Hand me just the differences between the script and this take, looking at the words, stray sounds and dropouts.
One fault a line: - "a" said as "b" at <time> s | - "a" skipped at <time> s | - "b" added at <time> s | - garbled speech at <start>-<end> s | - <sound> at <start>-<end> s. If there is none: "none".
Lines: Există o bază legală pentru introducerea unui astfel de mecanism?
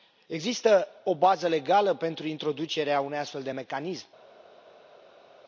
none